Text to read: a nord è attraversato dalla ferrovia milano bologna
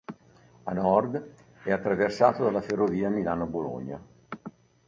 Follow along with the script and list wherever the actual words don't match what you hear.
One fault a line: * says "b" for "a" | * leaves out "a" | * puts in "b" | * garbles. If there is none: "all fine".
all fine